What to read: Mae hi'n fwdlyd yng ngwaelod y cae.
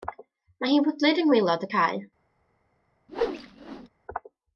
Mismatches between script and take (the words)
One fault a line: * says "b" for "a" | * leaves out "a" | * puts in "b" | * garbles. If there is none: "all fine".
all fine